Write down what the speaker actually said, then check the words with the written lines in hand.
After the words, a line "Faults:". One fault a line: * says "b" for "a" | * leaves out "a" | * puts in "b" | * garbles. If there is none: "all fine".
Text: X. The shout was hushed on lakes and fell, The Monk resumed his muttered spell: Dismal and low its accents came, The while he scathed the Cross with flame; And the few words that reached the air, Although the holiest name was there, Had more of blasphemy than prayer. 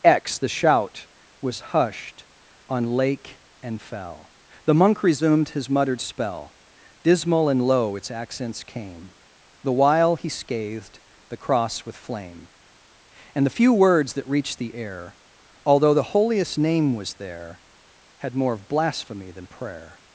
X. The shout was hushed on lake and fell, The Monk resumed his muttered spell: Dismal and low its accents came, The while he scathed the Cross with flame; And the few words that reached the air, Although the holiest name was there, Had more of blasphemy than prayer.
Faults:
* says "lake" for "lakes"